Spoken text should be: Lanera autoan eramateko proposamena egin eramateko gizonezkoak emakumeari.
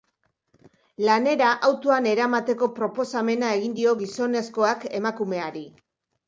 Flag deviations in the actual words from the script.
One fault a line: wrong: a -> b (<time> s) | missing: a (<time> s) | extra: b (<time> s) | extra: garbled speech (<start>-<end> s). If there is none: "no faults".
wrong: eramateko -> dio (3.8 s)